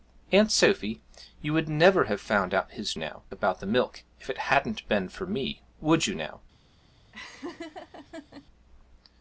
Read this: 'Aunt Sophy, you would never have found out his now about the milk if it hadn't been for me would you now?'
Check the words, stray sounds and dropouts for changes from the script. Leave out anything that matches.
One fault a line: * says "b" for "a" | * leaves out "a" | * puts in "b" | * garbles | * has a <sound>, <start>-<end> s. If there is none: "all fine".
* has a laugh, 7.1-8.5 s